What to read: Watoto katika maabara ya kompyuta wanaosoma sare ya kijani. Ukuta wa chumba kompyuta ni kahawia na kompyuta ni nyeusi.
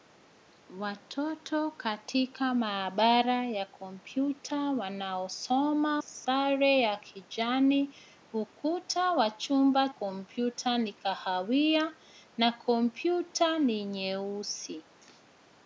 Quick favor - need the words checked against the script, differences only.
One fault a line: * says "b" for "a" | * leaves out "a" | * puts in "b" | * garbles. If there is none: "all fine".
all fine